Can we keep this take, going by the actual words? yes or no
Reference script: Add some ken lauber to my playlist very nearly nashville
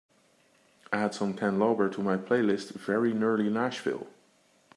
yes